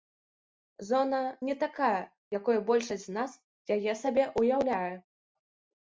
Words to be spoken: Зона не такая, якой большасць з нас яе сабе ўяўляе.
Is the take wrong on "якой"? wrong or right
right